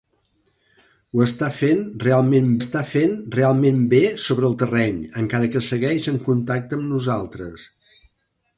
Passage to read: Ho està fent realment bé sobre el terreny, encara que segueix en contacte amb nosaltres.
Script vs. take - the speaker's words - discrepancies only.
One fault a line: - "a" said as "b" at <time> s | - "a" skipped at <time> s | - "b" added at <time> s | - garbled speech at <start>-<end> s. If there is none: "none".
- "està fent realment" added at 2.6 s